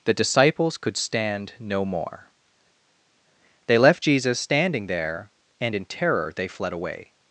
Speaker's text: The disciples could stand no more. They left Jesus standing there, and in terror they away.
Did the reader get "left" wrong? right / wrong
right